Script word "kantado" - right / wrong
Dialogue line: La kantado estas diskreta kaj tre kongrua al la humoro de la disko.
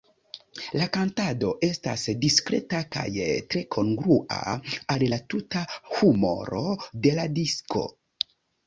right